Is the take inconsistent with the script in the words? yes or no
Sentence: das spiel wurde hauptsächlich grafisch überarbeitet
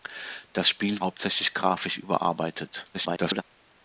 yes